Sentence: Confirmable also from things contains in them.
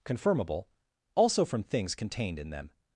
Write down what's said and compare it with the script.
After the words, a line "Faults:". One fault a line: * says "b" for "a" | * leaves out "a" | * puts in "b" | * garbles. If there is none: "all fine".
Confirmable also from things contained in them.
Faults:
* says "contained" for "contains"